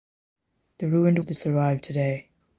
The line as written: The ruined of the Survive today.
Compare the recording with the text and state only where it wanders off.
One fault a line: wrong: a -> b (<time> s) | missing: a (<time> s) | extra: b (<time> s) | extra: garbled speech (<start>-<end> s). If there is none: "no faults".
no faults